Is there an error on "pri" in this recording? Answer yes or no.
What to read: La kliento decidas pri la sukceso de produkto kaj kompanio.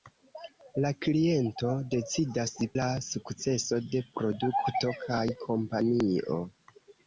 yes